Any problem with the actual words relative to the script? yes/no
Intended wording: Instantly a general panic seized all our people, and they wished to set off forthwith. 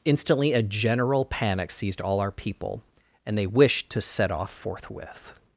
no